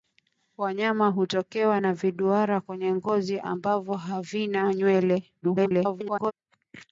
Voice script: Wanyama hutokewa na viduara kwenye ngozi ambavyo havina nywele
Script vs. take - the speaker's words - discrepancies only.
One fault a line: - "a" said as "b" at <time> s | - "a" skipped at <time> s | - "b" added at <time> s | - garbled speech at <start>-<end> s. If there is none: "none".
- garbled speech at 5.4-6.3 s